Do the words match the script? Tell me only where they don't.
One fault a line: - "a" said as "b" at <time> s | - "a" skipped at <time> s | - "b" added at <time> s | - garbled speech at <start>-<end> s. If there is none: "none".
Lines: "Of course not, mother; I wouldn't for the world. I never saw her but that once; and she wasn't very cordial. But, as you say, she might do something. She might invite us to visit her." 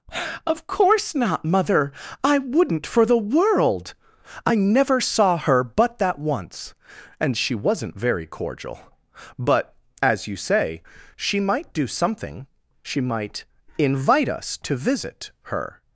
none